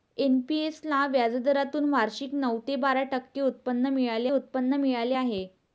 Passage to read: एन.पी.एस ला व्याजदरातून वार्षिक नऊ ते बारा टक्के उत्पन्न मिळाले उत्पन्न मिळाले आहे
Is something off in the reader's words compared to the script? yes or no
no